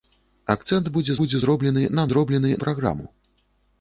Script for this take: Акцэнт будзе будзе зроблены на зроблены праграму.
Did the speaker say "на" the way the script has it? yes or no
yes